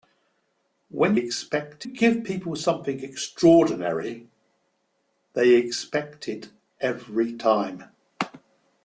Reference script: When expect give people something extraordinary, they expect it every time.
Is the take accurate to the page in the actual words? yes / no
yes